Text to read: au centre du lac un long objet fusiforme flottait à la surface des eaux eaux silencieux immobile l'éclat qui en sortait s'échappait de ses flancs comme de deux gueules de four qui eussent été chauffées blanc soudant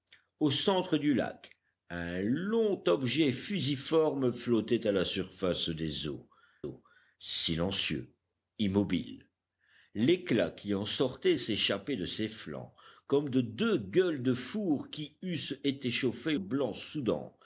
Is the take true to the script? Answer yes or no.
yes